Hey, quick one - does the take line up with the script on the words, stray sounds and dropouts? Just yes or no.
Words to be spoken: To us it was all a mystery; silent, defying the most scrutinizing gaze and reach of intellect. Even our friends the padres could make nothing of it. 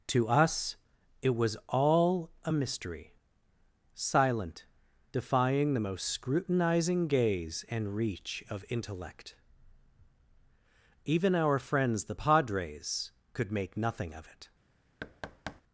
no